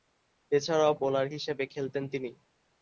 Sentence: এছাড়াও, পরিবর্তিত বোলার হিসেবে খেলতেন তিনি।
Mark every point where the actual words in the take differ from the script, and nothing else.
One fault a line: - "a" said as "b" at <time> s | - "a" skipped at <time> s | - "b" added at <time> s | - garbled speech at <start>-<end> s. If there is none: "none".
- "পরিবর্তিত" skipped at 0.9 s